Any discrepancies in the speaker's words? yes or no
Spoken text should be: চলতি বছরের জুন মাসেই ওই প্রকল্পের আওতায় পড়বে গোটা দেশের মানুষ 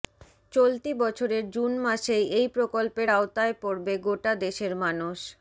yes